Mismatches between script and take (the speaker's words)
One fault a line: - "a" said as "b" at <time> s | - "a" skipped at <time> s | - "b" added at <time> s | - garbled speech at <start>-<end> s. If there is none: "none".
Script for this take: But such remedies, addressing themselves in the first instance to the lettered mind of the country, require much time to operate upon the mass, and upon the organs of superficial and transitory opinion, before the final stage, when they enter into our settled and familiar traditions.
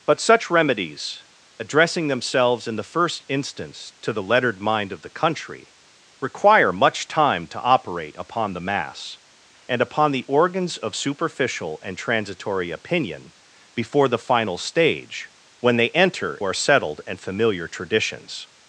- "into" skipped at 16.4 s